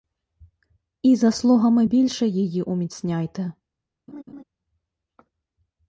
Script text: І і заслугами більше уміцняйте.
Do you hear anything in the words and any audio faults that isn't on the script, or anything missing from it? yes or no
yes